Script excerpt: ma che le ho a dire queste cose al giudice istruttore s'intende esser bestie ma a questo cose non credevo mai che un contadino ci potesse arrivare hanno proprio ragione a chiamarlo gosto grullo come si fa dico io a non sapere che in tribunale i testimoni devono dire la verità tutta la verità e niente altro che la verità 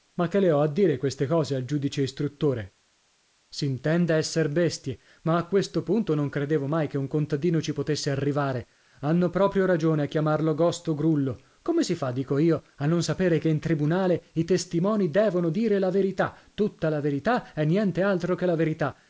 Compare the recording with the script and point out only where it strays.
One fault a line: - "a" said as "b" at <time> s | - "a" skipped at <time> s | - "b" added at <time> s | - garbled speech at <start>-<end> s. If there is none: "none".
- "cose" said as "punto" at 5.8 s